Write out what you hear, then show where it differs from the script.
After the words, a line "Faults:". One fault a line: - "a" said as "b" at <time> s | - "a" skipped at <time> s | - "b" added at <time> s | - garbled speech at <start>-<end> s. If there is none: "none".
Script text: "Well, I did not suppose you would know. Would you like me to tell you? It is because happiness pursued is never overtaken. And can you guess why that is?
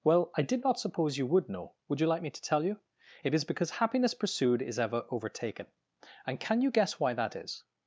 "Well, I did not suppose you would know. Would you like me to tell you? It is because happiness pursued is ever overtaken. And can you guess why that is?
Faults:
- "never" said as "ever" at 4.8 s